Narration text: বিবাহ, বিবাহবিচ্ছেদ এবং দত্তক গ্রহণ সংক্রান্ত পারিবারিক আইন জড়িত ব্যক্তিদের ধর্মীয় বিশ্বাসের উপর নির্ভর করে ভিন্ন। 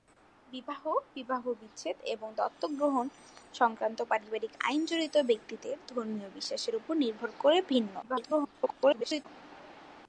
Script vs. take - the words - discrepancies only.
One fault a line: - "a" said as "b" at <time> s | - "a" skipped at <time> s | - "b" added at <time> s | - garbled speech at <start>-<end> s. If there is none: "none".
- garbled speech at 8.0-9.3 s